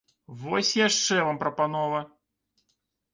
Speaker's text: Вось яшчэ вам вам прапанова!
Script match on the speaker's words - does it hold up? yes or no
no